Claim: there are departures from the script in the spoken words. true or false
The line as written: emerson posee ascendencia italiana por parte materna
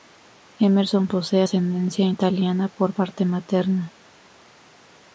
false